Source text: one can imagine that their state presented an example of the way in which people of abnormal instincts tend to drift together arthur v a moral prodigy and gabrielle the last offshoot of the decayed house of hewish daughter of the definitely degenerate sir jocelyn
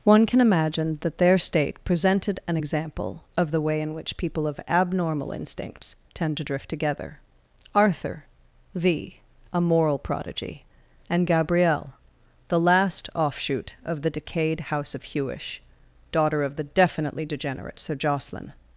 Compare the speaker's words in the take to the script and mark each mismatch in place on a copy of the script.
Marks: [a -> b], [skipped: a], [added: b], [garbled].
one can imagine that their state presented an example of the way in which people of abnormal instincts tend to drift together arthur v a moral prodigy and gabrielle the last offshoot of the decayed house of hewish daughter of the definitely degenerate sir jocelyn